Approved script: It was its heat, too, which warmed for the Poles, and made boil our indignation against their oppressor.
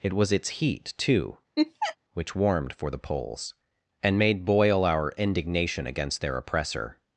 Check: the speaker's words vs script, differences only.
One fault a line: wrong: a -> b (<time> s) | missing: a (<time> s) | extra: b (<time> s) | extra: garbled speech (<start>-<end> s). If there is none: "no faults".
no faults